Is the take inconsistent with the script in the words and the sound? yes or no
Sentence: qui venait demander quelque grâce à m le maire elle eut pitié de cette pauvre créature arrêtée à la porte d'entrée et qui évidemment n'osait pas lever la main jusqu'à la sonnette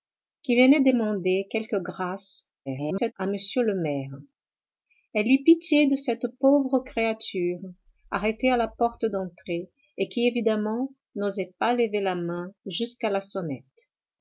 yes